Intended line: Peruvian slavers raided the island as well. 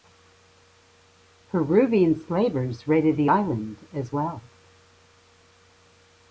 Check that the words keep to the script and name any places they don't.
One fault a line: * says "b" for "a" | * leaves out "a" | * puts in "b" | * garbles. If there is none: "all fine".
all fine